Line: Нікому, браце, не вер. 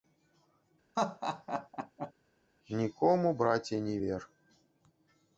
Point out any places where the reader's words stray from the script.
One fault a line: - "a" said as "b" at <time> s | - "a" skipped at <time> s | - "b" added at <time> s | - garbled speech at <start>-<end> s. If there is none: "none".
none